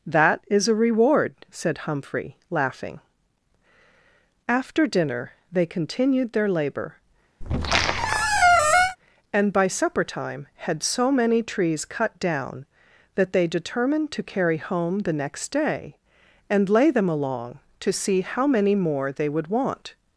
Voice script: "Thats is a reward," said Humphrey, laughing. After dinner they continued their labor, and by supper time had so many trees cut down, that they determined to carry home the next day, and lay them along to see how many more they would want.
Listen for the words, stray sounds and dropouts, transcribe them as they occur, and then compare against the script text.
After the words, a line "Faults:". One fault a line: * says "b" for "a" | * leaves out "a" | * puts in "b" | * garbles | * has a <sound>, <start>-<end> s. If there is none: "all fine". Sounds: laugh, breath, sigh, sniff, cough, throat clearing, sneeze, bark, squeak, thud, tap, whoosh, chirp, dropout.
"That is a reward," said Humphrey, laughing. After dinner they continued their labor, and by supper time had so many trees cut down, that they determined to carry home the next day, and lay them along to see how many more they would want.
Faults:
* says "That" for "Thats"
* has a squeak, 7.4-9.0 s